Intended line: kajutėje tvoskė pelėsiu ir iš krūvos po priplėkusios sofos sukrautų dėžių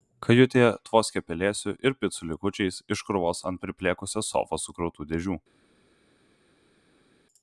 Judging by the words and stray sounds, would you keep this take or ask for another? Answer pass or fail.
fail